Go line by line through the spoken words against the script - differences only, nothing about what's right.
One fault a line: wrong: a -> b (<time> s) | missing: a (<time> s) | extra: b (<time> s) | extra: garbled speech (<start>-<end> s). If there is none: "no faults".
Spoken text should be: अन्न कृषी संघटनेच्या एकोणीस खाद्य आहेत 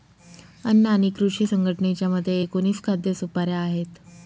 extra: आणि (0.9 s)
extra: मते (2.1 s)
extra: सुपाऱ्या (3.1 s)